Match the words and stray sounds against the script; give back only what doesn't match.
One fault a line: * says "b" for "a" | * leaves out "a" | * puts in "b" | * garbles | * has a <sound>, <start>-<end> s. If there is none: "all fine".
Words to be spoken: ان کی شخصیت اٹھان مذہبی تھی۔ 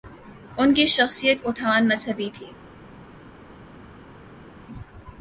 all fine